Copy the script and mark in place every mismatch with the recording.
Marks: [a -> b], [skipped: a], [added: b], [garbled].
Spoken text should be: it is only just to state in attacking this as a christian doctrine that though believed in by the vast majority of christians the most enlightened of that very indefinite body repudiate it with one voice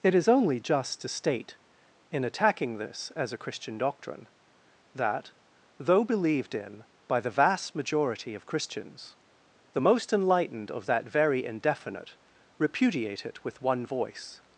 it is only just to state in attacking this as a christian doctrine that though believed in by the vast majority of christians the most enlightened of that very indefinite [skipped: body] repudiate it with one voice